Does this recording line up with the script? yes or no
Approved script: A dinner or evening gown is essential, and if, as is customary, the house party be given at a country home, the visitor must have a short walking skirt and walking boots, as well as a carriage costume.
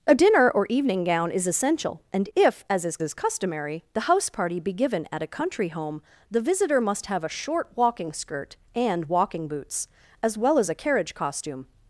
no